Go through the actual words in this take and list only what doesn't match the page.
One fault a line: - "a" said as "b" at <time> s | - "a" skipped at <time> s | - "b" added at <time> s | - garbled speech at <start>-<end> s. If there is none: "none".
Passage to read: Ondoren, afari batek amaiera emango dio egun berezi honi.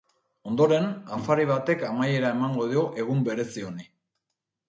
none